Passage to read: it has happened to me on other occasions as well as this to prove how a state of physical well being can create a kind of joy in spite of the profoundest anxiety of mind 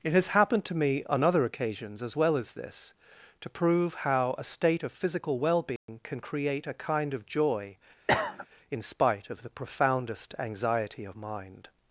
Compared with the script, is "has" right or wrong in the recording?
right